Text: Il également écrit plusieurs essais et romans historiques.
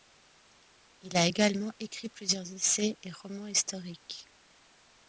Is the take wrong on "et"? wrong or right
right